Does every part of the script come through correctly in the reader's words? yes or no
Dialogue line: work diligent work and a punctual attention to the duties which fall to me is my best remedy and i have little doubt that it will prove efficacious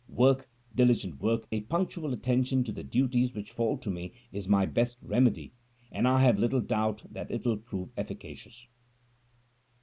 no